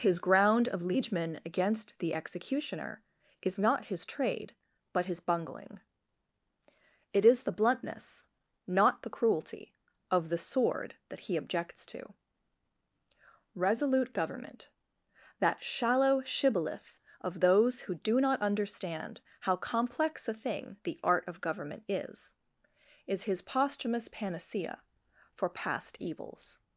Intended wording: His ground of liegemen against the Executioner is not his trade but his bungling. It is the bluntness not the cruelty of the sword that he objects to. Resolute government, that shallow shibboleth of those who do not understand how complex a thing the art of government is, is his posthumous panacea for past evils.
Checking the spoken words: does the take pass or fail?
pass